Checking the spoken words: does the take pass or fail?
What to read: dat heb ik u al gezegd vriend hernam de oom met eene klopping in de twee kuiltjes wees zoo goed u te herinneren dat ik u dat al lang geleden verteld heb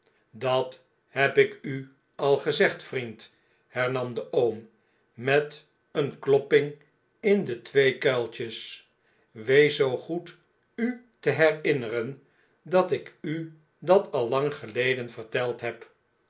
pass